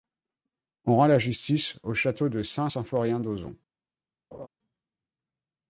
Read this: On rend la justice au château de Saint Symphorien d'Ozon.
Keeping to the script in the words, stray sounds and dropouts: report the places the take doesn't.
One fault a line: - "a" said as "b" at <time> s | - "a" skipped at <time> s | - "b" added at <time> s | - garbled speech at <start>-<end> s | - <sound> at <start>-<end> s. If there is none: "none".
- laugh at 4.3-4.5 s